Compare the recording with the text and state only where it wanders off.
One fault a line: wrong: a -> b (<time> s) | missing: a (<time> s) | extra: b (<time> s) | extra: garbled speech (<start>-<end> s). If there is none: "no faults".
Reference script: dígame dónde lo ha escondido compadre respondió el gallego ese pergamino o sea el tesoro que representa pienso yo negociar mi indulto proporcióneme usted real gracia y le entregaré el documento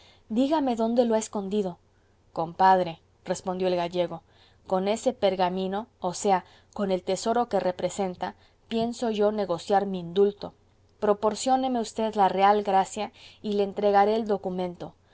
extra: con (4.7 s)
extra: con (6.7 s)
extra: la (12.2 s)